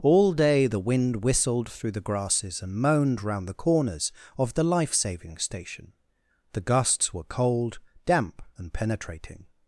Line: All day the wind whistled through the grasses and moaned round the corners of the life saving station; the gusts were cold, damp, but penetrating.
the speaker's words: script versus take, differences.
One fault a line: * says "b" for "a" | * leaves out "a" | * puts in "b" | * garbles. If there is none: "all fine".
* says "and" for "but"